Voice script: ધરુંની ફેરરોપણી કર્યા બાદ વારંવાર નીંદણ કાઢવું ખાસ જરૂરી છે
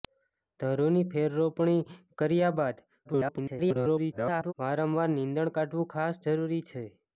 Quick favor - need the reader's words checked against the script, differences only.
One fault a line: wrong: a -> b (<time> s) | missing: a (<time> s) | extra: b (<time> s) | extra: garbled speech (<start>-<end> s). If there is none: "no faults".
extra: garbled speech (3.0-4.5 s)